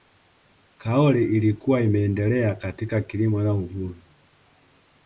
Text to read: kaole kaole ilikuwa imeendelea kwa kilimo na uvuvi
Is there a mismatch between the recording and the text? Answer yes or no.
yes